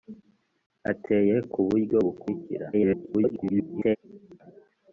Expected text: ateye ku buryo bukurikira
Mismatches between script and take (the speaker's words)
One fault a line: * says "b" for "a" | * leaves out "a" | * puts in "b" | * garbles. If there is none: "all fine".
* garbles